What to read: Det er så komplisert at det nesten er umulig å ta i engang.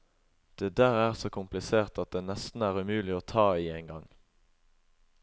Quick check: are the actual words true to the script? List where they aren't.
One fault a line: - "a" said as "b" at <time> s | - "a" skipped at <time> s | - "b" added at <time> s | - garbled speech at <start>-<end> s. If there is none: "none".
- "der" added at 0.8 s